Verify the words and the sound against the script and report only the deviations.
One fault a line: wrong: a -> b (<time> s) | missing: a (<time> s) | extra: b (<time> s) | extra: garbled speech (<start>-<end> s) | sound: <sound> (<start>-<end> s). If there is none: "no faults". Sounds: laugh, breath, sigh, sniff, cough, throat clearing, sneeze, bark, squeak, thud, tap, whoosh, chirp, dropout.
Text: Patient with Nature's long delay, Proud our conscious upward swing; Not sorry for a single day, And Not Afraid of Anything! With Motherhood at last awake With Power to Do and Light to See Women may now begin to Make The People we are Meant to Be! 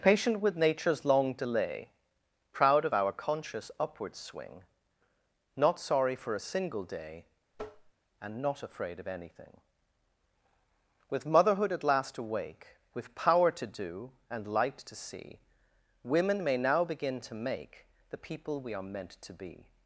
extra: of (2.9 s)
sound: tap (7.5-7.9 s)